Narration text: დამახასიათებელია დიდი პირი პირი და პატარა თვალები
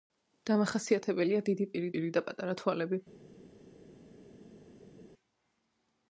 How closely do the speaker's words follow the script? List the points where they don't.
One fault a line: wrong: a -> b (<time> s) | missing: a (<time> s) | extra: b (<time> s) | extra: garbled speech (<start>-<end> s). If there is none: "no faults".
no faults